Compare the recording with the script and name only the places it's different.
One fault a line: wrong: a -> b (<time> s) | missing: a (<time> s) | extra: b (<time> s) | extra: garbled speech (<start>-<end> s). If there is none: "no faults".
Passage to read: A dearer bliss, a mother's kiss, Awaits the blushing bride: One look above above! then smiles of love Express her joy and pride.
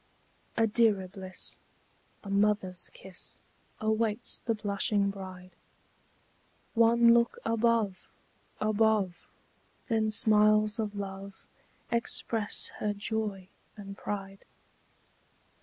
no faults